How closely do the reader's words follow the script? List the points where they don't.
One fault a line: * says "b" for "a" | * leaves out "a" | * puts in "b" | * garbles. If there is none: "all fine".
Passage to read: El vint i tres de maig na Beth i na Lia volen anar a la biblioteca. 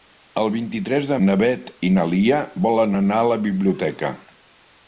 * leaves out "maig"